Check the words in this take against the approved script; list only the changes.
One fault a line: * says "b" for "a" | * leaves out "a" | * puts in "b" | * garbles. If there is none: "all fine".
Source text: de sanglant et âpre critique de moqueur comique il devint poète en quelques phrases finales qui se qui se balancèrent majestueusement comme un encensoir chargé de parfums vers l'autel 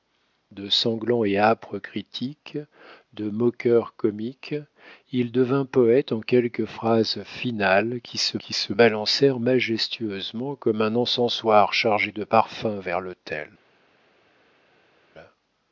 all fine